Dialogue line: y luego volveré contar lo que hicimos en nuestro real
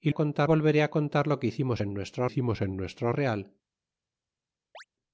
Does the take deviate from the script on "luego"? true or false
true